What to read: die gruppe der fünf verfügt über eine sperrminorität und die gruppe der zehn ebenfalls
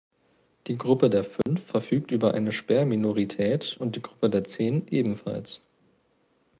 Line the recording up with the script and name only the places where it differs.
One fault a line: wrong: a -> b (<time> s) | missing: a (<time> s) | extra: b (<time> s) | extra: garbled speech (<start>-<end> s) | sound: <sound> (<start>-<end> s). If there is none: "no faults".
sound: dropout (1.4-1.5 s)